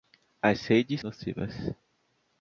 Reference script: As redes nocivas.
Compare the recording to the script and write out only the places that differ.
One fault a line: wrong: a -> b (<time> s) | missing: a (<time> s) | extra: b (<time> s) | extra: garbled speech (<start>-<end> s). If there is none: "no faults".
no faults